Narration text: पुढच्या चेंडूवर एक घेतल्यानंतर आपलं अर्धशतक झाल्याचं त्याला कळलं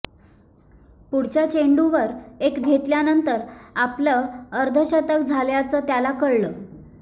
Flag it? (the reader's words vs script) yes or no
no